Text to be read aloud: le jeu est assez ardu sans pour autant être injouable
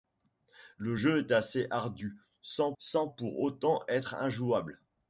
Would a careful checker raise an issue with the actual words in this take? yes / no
yes